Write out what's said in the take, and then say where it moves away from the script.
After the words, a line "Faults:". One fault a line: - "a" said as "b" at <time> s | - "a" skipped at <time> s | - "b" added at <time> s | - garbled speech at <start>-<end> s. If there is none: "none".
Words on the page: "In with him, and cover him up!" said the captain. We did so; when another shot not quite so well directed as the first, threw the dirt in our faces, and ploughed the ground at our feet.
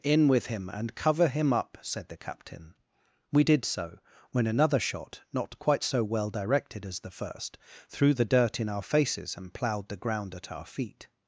"In with him, and cover him up!" said the captain. We did so; when another shot not quite so well directed as the first, threw the dirt in our faces, and ploughed the ground at our feet.
Faults:
none